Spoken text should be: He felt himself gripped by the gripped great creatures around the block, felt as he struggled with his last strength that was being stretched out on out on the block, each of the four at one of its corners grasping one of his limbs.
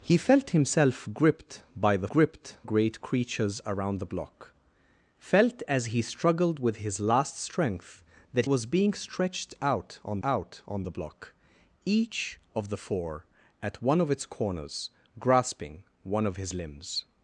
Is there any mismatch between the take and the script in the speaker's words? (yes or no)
no